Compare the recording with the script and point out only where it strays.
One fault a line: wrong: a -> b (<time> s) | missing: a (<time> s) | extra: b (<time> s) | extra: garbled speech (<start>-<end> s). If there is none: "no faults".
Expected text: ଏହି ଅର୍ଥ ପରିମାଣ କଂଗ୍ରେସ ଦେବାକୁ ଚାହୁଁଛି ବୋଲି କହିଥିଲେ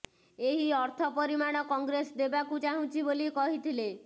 no faults